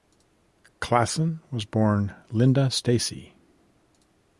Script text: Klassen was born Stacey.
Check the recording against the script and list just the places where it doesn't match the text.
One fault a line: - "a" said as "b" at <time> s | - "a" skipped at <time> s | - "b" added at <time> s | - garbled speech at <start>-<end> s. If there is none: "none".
- "Linda" added at 2.3 s